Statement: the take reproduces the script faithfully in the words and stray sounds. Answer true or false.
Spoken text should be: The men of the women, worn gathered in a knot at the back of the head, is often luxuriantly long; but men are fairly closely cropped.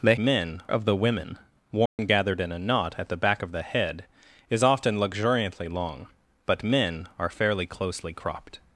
false